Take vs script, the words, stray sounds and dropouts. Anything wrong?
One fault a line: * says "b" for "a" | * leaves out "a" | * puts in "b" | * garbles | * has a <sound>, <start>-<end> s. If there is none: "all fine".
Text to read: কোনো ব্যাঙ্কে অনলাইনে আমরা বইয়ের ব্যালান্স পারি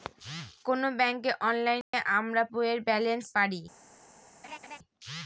* has a dropout, 1.8-1.9 s
* has a laugh, 4.4-4.8 s